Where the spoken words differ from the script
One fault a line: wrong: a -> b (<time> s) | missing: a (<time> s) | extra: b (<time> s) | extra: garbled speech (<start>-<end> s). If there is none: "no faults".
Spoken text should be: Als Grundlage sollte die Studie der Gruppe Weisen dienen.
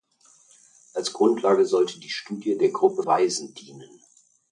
no faults